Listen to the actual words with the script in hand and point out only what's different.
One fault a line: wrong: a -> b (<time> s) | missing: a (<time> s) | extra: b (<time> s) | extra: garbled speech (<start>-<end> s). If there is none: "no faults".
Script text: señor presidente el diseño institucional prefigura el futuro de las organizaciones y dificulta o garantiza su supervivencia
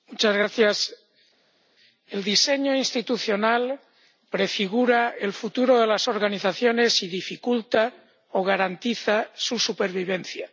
no faults